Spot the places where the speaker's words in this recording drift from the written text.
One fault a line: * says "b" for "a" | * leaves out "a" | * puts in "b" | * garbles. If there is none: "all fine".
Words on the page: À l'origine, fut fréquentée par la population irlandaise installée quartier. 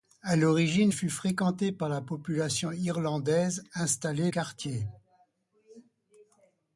all fine